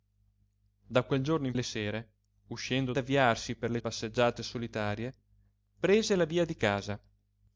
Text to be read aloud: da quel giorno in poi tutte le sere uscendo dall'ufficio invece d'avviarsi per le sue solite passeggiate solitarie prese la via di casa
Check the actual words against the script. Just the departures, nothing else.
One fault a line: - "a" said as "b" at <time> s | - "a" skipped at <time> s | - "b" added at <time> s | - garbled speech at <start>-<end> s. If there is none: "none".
- "poi tutte" skipped at 1.6 s
- "dall'ufficio invece" skipped at 2.9 s
- "sue solite" skipped at 3.8 s